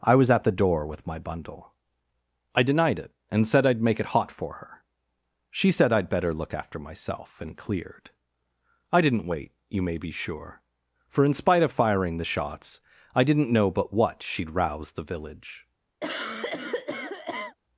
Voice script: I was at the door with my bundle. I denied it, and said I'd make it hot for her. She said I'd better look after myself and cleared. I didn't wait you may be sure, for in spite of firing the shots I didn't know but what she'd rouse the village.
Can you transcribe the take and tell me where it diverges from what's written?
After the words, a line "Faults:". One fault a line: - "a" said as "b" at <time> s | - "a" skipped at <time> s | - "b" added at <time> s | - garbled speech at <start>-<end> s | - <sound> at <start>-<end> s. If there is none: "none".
I was at the door with my bundle. I denied it, and said I'd make it hot for her. She said I'd better look after myself and cleared. I didn't wait you may be sure, for in spite of firing the shots I didn't know but what she'd rouse the village.
Faults:
- cough at 16.0-17.6 s